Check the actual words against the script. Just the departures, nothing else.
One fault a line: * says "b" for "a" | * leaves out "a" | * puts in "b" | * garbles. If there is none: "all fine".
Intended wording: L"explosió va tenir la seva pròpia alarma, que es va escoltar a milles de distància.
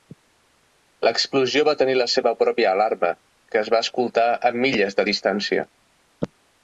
all fine